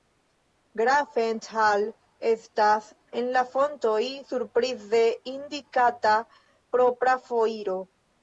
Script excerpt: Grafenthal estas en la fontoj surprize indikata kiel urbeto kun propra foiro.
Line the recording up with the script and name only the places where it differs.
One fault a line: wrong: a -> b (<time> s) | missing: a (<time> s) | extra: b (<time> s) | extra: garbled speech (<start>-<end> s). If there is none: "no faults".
missing: kiel urbeto kun (6.2 s)